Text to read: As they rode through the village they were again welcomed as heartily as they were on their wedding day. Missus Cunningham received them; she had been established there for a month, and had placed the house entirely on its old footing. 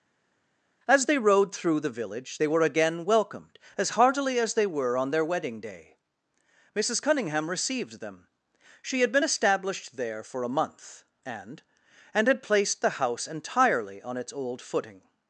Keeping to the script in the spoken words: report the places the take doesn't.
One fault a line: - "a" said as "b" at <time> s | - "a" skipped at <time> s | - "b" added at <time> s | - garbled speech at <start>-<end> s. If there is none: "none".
- "and" added at 12.1 s